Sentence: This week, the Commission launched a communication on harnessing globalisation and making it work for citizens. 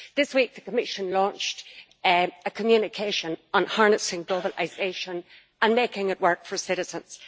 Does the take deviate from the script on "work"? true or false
false